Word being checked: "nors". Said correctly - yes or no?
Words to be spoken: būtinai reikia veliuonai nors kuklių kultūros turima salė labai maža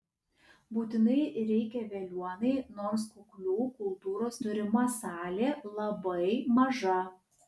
yes